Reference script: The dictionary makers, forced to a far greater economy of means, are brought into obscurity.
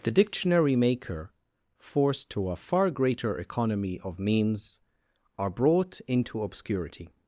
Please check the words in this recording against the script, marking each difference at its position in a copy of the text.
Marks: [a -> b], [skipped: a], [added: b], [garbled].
The dictionary [makers, -> maker] forced to a far greater economy of means, are brought into obscurity.